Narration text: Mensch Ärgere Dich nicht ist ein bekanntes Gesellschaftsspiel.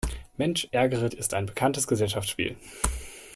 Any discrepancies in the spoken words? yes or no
yes